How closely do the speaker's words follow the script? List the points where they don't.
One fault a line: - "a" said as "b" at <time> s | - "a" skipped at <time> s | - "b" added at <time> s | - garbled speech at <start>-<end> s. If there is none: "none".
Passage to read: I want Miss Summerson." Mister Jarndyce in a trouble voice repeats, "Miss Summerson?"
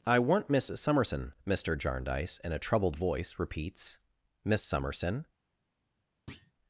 - "trouble" said as "troubled" at 2.6 s